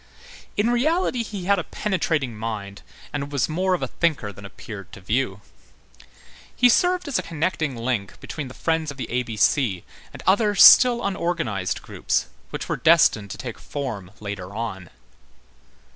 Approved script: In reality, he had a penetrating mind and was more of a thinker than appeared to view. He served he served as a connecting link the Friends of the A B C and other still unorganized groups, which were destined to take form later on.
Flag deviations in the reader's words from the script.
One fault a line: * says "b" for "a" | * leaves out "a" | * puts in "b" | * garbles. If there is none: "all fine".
* leaves out "he served"
* puts in "between"